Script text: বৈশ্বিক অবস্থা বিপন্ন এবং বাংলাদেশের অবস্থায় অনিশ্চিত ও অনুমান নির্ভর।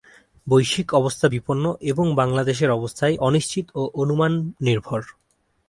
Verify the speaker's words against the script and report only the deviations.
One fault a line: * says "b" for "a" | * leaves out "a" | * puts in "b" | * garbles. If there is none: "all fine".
all fine